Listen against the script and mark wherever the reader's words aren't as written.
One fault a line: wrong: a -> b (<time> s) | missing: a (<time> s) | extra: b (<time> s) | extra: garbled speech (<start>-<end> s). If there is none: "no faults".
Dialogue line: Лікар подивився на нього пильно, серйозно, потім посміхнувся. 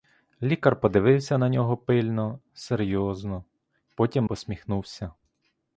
no faults